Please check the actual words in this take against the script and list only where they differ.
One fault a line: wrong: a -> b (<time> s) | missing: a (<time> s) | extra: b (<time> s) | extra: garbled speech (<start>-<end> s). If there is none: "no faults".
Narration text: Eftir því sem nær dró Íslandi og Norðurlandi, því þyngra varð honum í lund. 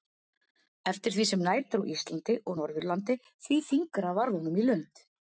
no faults